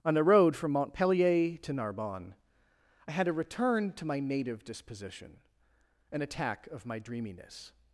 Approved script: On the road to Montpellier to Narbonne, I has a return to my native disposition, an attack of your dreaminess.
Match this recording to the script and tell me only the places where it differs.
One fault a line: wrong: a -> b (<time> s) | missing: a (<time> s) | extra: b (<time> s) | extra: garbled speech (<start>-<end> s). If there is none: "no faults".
wrong: to -> from (0.6 s)
wrong: has -> had (3.1 s)
wrong: your -> my (6.9 s)